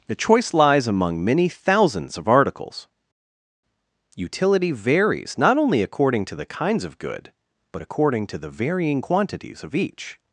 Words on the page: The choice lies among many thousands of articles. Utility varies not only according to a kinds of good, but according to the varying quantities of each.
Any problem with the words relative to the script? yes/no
yes